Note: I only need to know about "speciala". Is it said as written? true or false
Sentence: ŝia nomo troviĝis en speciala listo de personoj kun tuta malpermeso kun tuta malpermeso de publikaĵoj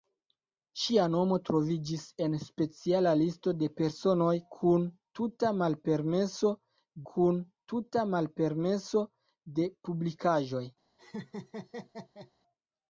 true